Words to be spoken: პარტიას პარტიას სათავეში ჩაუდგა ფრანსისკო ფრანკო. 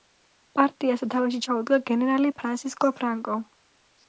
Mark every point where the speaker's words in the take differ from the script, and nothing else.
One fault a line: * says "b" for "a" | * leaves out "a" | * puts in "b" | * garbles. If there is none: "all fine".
* leaves out "პარტიას"
* puts in "გენერალი"